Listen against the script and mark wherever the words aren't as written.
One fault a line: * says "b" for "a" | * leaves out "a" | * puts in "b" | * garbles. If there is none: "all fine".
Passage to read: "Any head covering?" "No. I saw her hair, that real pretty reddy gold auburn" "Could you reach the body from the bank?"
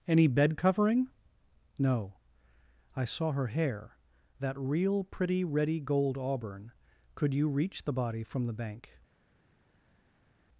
* says "bed" for "head"